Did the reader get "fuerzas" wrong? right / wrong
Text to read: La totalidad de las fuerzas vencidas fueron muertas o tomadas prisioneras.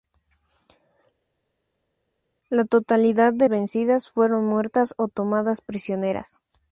wrong